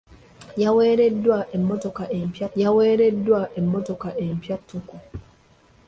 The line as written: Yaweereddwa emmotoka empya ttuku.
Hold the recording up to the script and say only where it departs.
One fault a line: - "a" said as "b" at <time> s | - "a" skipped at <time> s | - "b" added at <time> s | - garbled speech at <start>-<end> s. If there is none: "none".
- "yaweereddwa emmotoka empya" added at 2.6 s